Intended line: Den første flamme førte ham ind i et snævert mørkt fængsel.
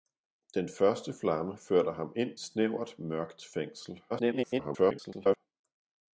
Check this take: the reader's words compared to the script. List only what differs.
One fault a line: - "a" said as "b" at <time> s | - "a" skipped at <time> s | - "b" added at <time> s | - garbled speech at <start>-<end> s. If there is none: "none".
- "i et" skipped at 2.3 s
- garbled speech at 4.1-5.4 s